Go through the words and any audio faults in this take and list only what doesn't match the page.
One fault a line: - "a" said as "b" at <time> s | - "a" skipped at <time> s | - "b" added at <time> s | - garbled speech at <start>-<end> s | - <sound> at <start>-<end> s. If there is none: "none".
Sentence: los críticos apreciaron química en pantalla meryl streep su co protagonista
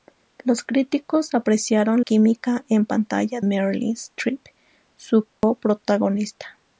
- dropout at 5.3-5.4 s